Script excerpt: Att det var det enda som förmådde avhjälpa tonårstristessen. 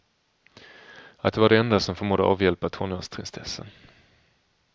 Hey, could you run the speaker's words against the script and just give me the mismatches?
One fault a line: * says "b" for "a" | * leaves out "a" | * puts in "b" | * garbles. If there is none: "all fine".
all fine